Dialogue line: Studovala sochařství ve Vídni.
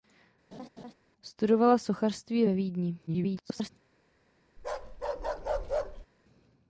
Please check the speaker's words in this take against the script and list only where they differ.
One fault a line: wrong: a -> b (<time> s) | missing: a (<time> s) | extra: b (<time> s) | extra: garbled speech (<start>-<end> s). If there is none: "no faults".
extra: garbled speech (3.1-3.7 s)